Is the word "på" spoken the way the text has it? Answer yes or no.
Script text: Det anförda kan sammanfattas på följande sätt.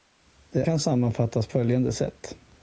no